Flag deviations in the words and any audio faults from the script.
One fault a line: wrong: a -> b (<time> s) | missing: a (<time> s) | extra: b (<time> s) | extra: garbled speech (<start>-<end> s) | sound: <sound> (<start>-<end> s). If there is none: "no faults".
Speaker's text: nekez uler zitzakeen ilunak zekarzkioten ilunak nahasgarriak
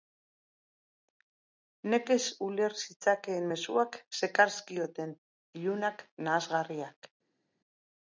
wrong: ilunak -> mezuak (3.5 s)